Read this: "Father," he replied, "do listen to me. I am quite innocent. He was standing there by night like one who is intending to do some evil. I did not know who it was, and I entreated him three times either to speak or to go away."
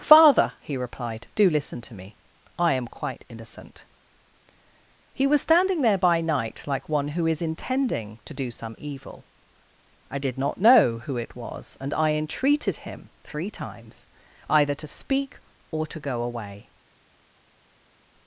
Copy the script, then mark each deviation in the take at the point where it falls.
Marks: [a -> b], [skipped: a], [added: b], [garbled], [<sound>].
"Father," he replied, "do listen to me. I am quite innocent. He was standing there by night like one who is intending to do some evil. I did not know who it was, and I entreated him three times either to speak or to go away."